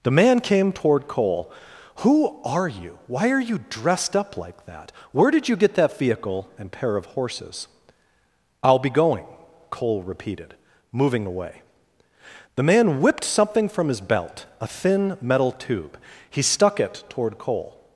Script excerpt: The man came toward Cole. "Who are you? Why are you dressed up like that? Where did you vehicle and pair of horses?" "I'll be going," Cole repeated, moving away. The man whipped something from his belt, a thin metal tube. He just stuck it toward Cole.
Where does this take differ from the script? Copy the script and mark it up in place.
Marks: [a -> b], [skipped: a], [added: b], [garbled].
The man came toward Cole. "Who are you? Why are you dressed up like that? Where did you [added: get that] vehicle and pair of horses?" "I'll be going," Cole repeated, moving away. The man whipped something from his belt, a thin metal tube. He [skipped: just] stuck it toward Cole.